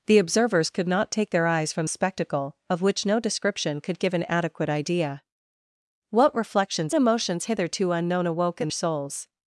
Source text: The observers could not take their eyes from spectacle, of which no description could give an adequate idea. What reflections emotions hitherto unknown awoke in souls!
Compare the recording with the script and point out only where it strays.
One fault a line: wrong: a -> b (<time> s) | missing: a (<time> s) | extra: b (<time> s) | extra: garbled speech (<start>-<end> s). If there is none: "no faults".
no faults